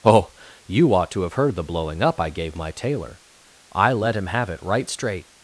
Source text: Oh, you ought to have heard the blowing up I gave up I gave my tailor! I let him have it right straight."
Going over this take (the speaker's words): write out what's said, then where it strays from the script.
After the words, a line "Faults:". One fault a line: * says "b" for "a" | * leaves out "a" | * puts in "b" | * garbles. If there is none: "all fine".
Oh, you ought to have heard the blowing up I gave my tailor! I let him have it right straight."
Faults:
* leaves out "up I gave"